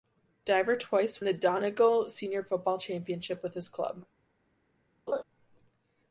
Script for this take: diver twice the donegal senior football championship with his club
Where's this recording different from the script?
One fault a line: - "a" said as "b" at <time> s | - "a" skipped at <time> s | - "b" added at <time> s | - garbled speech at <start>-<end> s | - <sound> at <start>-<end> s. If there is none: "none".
- laugh at 5.1-5.2 s